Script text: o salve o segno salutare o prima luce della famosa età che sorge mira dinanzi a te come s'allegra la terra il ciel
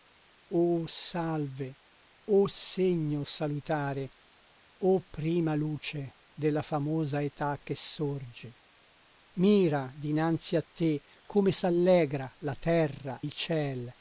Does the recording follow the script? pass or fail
pass